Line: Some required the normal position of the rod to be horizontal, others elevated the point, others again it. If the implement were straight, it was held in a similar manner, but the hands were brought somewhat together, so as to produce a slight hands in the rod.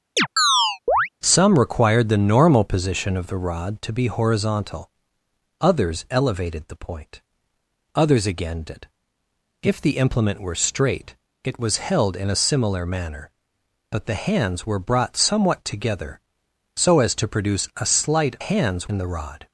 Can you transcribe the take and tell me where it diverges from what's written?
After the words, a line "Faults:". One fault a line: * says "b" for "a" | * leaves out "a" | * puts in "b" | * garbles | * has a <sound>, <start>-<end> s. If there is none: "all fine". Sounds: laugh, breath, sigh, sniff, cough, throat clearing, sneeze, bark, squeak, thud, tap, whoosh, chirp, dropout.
Some required the normal position of the rod to be horizontal, others elevated the point, others again it. If the implement were straight, it was held in a similar manner, but the hands were brought somewhat together, so as to produce a slight hands in the rod.
Faults:
* has a chirp, 0.2-1.1 s